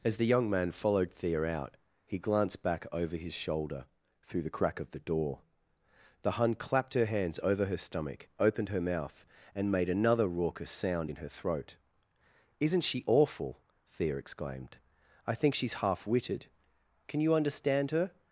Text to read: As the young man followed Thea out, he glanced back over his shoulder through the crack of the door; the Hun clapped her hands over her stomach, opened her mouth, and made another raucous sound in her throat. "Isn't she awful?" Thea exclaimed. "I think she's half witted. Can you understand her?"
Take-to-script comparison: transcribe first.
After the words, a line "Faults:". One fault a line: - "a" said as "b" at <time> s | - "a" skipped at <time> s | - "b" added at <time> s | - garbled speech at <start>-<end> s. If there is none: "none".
As the young man followed Thea out, he glanced back over his shoulder through the crack of the door; the Hun clapped her hands over her stomach, opened her mouth, and made another raucous sound in her throat. "Isn't she awful?" Thea exclaimed. "I think she's half witted. Can you understand her?"
Faults:
none